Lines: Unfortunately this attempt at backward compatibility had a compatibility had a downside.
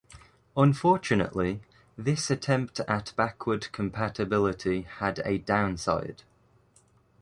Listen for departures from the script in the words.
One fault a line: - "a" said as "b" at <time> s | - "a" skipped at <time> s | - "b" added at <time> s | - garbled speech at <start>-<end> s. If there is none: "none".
- "compatibility had a" skipped at 5.4 s